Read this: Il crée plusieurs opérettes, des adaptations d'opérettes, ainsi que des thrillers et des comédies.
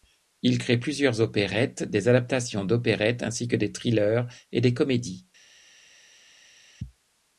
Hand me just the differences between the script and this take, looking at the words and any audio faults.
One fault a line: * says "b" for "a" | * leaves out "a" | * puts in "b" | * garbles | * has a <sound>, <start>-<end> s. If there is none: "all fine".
all fine